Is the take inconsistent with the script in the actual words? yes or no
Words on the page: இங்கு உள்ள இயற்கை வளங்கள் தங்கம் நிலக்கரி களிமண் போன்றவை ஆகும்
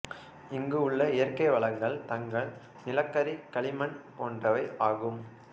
no